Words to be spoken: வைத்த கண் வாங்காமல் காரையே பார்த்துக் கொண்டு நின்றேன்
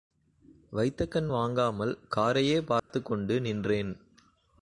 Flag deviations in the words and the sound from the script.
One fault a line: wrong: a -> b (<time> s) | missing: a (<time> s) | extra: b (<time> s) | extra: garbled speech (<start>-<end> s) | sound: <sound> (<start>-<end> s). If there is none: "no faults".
sound: dropout (2.8-2.9 s)